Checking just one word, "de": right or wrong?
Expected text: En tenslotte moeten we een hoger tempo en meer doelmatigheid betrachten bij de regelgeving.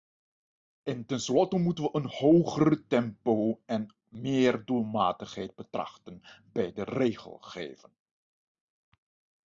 right